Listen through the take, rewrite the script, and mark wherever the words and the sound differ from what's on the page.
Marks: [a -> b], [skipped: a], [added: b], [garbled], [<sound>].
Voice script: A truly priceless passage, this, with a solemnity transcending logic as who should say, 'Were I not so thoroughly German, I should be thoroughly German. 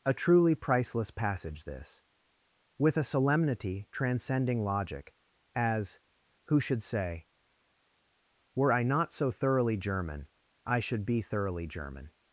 A truly priceless passage, this, with a solemnity transcending logic as who should say, 'Were I not so thoroughly German, I should be thoroughly German.